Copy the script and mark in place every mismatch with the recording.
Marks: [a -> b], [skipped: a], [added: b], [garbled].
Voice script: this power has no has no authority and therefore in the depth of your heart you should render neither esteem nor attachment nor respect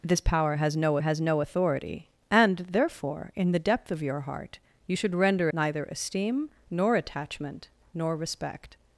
this power has no has no authority and therefore in the depth of your heart you should render neither esteem nor attachment nor respect